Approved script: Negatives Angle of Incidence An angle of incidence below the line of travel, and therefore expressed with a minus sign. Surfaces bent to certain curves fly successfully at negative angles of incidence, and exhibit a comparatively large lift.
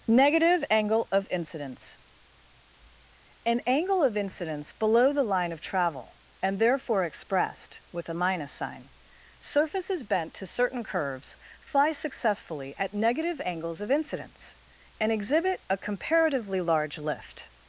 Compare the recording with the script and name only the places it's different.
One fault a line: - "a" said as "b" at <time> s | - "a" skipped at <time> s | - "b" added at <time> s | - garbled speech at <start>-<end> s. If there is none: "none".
- "Negatives" said as "Negative" at 0.1 s